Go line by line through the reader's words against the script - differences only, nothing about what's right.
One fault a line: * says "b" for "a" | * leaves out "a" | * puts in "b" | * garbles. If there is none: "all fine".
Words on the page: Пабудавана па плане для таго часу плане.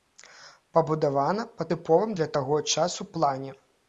* says "тыповым" for "плане"